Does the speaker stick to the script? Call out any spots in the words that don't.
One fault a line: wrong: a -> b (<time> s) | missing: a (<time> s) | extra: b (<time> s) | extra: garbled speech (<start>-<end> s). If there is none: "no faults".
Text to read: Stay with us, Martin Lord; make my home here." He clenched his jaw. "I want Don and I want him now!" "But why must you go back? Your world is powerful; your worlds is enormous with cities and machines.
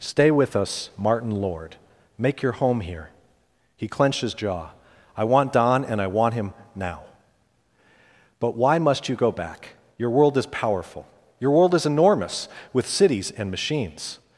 wrong: my -> your (2.4 s)
wrong: worlds -> world (11.5 s)